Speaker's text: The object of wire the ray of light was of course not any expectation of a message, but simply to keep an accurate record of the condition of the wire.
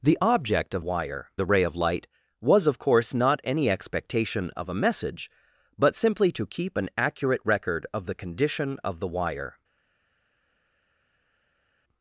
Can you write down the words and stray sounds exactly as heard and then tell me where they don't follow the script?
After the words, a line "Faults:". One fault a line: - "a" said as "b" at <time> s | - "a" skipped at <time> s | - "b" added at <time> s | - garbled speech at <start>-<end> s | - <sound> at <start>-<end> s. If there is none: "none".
The object of wire the ray of light was of course not any expectation of a message, but simply to keep an accurate record of the condition of the wire.
Faults:
none